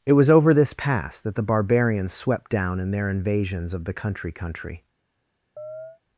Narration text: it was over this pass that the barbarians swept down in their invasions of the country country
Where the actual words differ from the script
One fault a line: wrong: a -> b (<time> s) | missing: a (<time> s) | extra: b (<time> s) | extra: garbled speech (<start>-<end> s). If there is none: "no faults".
no faults